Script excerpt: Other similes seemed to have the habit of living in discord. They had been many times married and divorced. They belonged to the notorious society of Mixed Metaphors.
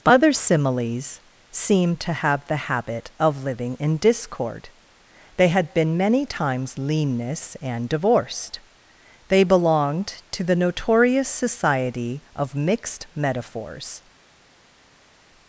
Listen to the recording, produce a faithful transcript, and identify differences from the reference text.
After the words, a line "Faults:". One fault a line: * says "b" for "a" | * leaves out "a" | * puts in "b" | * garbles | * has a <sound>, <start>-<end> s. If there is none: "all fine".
Other similes seemed to have the habit of living in discord. They had been many times leanness and divorced. They belonged to the notorious society of Mixed Metaphors.
Faults:
* says "leanness" for "married"